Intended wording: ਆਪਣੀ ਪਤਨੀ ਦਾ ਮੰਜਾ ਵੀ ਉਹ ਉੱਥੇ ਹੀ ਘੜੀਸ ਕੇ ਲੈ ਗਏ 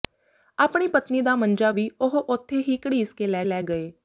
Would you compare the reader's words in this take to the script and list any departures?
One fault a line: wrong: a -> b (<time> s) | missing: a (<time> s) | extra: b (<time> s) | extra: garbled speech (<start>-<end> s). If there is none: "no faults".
extra: ਲੈ (3.4 s)